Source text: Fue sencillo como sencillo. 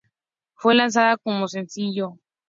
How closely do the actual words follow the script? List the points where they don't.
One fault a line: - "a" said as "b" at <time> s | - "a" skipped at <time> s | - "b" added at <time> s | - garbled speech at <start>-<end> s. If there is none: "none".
- "sencillo" said as "lanzada" at 0.7 s